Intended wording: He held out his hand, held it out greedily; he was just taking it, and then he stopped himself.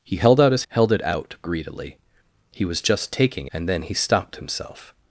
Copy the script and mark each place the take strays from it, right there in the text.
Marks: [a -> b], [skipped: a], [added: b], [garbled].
He held out his [skipped: hand,] held it out greedily; he was just taking [skipped: it,] and then he stopped himself.